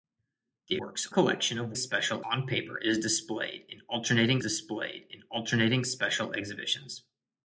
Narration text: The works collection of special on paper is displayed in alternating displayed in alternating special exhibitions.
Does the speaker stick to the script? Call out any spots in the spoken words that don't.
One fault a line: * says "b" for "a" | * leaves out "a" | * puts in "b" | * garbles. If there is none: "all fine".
all fine